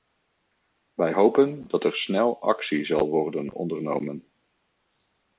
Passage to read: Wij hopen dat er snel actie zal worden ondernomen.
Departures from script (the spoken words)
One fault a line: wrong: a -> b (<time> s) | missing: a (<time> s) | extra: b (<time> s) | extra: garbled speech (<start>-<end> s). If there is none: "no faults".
no faults